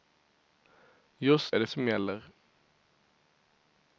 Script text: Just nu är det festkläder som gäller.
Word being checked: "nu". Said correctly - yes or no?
no